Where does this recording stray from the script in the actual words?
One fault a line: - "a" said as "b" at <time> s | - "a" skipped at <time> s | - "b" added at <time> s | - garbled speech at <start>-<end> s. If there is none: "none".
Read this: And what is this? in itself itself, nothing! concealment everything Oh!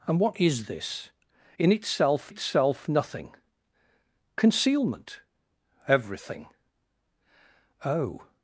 none